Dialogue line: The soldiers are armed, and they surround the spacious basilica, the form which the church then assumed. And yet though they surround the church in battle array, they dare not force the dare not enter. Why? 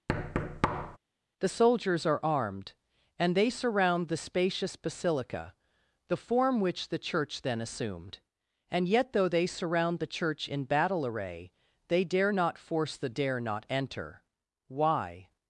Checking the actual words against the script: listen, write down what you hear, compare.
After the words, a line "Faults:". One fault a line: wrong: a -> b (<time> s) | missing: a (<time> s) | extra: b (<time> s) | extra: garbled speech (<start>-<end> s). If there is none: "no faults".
The soldiers are armed, and they surround the spacious basilica, the form which the church then assumed. And yet though they surround the church in battle array, they dare not force the dare not enter. Why?
Faults:
no faults